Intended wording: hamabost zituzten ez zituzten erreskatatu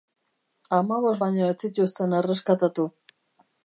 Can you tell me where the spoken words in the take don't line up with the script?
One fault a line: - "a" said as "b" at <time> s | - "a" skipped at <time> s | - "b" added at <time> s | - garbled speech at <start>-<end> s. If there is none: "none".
- "zituzten" said as "baino" at 1.2 s